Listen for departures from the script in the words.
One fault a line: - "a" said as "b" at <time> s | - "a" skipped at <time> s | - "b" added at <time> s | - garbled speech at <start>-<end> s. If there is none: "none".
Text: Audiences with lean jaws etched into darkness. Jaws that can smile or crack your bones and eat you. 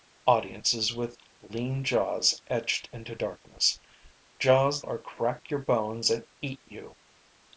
- "that can smile" skipped at 4.8 s